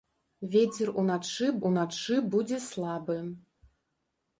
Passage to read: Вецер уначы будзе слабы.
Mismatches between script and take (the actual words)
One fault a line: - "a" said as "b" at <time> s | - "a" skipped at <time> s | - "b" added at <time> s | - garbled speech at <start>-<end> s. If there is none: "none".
- "уначы" added at 1.7 s